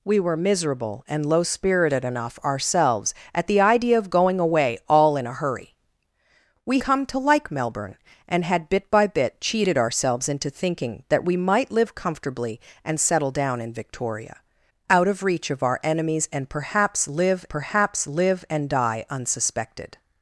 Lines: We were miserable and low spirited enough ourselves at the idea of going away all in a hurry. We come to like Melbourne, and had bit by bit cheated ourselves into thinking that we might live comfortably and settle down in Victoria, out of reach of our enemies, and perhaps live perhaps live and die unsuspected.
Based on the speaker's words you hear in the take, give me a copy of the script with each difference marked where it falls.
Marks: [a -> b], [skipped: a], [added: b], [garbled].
We were miserable and low spirited enough ourselves at the idea of going away all in a hurry. We come to like Melbourne, and had bit by bit cheated ourselves into thinking that we might live comfortably and settle down in Victoria, out of reach of our enemies, and perhaps live perhaps live and die unsuspected.